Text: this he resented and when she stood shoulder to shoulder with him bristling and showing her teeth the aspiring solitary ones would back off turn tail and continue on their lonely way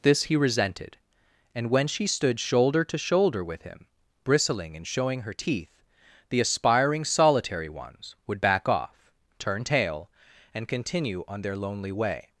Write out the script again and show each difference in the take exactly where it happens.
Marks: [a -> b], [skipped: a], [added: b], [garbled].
this he resented and when she stood shoulder to shoulder with him bristling and showing her teeth the aspiring solitary ones would back off turn tail and continue on their lonely way